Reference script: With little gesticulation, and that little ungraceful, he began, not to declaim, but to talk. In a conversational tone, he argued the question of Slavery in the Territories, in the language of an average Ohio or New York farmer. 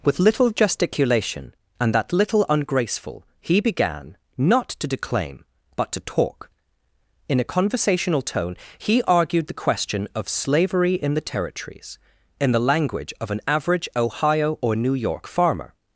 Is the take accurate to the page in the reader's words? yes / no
yes